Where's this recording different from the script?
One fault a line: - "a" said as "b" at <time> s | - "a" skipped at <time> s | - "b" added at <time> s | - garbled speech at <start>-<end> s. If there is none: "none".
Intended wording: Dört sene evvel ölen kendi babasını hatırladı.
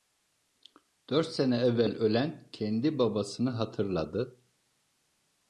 none